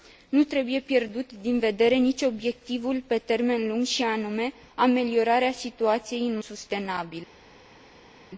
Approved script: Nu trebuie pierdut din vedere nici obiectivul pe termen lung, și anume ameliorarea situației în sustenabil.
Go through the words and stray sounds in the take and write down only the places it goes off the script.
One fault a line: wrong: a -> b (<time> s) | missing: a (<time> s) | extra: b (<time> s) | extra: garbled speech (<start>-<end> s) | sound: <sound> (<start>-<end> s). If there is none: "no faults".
no faults